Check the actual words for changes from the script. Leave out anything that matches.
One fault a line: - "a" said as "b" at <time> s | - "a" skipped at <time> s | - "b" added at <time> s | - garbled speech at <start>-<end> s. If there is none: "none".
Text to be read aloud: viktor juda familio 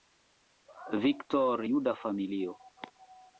none